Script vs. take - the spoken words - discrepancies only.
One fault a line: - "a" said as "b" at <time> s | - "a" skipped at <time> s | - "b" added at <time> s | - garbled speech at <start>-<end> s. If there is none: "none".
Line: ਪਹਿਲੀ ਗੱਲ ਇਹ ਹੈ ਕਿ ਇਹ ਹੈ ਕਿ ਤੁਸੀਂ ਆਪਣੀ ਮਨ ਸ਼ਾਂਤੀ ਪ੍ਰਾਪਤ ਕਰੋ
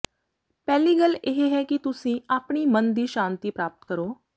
- "ਇਹ ਹੈ ਕਿ" skipped at 1.8 s
- "ਦੀ" added at 2.9 s